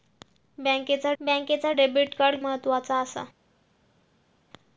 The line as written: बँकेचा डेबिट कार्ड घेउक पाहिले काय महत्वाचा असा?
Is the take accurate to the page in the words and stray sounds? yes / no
no